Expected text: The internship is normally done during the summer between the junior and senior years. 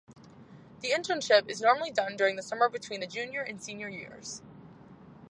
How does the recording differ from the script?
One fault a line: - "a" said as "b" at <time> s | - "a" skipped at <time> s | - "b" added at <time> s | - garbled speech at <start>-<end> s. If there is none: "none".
none